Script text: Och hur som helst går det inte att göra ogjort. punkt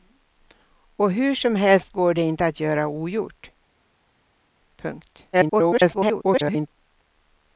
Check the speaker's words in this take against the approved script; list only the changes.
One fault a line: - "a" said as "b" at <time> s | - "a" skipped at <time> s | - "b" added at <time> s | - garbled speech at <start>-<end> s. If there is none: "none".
- garbled speech at 5.3-6.7 s